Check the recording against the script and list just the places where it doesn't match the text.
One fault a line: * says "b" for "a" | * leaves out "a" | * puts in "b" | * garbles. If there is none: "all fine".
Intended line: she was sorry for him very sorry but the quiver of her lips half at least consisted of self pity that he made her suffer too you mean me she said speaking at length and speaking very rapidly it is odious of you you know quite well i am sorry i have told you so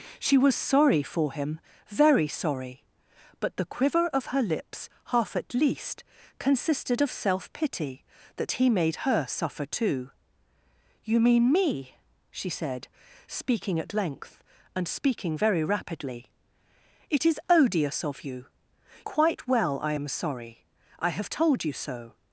* leaves out "you know"